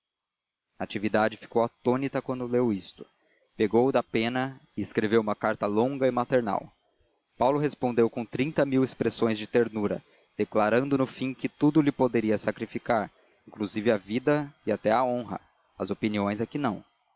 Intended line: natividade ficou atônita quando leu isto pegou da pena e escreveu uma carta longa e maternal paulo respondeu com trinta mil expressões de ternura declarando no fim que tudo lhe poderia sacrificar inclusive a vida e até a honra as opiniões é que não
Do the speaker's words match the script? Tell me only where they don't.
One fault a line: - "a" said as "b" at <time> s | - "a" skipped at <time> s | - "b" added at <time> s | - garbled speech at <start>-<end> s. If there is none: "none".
none